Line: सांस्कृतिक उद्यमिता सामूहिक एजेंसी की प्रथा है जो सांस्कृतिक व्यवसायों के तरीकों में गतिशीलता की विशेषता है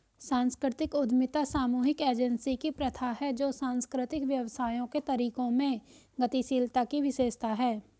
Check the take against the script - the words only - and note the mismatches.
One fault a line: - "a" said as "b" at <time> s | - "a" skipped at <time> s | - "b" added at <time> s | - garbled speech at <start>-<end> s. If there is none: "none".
none